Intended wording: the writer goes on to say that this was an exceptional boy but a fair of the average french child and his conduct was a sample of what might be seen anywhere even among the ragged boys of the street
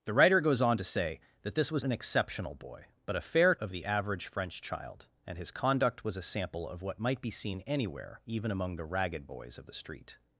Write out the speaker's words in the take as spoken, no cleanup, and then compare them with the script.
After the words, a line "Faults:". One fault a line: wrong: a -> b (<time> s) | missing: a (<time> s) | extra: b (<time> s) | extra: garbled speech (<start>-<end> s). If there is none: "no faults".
the writer goes on to say that this was an exceptional boy but a fair of the average french child and his conduct was a sample of what might be seen anywhere even among the ragged boys of the street
Faults:
no faults